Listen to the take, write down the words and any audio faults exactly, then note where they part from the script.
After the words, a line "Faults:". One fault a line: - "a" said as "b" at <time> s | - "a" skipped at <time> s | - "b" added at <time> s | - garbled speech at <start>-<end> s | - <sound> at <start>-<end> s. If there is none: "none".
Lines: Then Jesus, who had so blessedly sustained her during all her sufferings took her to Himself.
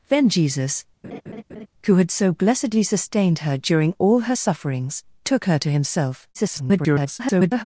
Then Jesus, who had so blessedly sustained her during all her sufferings took her to Himself. [garbled]
Faults:
- laugh at 1.0-1.7 s
- garbled speech at 6.3-7.6 s